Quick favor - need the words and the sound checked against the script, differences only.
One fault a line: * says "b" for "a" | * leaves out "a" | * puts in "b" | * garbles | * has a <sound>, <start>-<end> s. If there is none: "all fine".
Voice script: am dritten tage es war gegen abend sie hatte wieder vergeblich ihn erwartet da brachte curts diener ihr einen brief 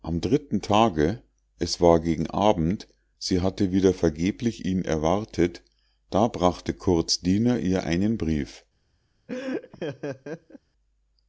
* has a laugh, 9.3-10.6 s